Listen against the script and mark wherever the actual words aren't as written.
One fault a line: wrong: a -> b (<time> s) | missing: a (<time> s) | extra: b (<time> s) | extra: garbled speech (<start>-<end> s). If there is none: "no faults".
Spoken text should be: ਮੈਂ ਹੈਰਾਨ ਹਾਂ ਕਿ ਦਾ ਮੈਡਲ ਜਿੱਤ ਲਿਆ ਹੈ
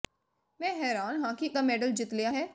no faults